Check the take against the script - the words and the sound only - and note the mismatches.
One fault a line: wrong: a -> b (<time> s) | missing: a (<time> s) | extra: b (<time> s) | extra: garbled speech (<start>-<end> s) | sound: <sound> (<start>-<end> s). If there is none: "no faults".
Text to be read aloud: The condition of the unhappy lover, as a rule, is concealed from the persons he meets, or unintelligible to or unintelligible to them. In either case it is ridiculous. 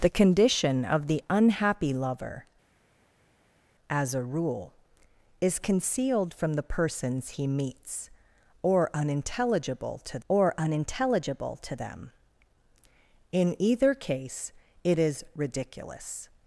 no faults